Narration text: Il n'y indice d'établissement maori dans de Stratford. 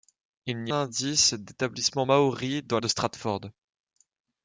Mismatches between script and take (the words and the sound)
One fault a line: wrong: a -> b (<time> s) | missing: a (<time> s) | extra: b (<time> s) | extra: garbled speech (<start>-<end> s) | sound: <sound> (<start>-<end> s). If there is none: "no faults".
no faults